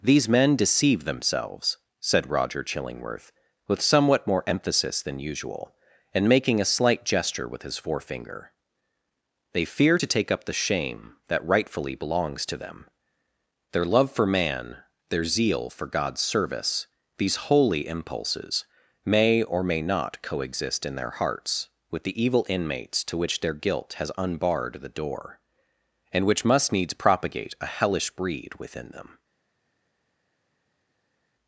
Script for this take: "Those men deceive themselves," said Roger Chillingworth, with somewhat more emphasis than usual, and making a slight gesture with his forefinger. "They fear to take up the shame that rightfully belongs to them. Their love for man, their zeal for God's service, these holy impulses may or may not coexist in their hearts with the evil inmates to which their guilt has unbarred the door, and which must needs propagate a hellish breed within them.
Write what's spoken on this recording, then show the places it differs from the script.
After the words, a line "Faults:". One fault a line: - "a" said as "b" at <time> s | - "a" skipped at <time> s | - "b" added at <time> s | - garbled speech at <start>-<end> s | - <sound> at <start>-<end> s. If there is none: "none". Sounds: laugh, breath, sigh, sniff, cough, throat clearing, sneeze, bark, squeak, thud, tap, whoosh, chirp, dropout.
"These men deceive themselves," said Roger Chillingworth, with somewhat more emphasis than usual, and making a slight gesture with his forefinger. "They fear to take up the shame that rightfully belongs to them. Their love for man, their zeal for God's service, these holy impulses may or may not coexist in their hearts with the evil inmates to which their guilt has unbarred the door, and which must needs propagate a hellish breed within them.
Faults:
- "Those" said as "These" at 0.0 s